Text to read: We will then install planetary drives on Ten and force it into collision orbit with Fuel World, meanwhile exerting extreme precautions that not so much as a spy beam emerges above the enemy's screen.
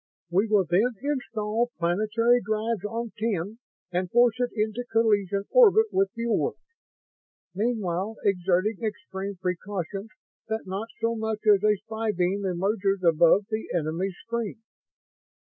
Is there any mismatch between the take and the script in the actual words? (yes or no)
no